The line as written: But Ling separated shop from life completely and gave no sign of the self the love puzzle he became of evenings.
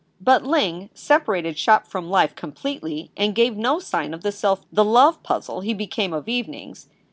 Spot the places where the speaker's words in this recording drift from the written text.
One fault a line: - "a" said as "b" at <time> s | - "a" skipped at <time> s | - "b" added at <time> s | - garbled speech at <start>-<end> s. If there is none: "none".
none